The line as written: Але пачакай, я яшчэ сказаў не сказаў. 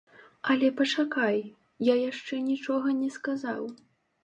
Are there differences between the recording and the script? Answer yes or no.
yes